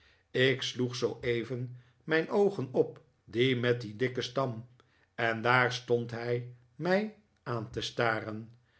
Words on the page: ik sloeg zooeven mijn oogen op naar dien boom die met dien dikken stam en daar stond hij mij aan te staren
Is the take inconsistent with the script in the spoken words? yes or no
yes